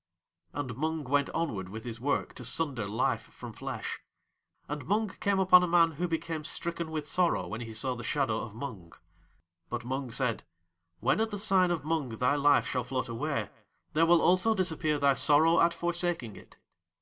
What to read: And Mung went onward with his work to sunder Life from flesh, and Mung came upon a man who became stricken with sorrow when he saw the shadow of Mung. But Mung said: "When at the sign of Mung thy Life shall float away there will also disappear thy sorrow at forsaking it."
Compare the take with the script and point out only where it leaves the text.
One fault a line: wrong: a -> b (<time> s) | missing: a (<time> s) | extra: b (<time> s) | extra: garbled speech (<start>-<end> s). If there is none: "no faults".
no faults